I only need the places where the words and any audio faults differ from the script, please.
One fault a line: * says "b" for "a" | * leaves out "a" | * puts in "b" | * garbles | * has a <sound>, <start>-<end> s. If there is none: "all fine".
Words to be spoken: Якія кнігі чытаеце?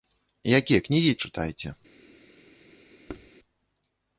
* has a thud, 3.1-3.3 s